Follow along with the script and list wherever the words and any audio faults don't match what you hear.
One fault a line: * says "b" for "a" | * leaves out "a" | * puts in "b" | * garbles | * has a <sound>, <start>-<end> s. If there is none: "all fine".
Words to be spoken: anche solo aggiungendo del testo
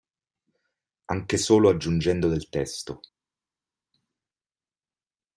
all fine